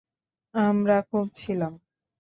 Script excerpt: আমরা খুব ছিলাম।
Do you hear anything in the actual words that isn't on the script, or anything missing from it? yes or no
no